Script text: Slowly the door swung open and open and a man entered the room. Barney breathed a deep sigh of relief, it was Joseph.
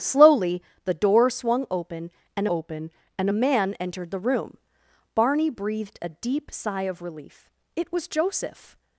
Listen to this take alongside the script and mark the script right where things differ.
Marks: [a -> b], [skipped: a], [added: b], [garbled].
Slowly the door swung open and open and a man entered the room. Barney breathed a deep sigh of relief, it was Joseph.